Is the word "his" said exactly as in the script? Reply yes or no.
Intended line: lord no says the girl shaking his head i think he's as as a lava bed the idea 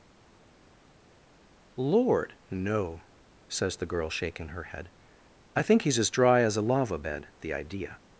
no